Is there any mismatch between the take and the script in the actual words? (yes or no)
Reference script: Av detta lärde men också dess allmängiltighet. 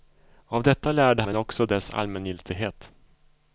no